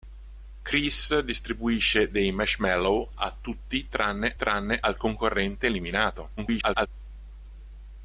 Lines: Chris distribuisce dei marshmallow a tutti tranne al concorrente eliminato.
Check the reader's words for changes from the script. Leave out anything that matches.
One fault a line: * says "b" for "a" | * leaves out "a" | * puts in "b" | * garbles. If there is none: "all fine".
* puts in "tranne"
* garbles